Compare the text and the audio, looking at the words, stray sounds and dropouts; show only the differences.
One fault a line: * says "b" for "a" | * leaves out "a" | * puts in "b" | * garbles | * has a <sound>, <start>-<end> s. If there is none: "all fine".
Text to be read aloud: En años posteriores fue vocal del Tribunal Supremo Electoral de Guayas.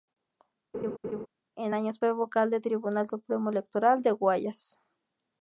* has a laugh, 0.7-1.3 s
* leaves out "posteriores"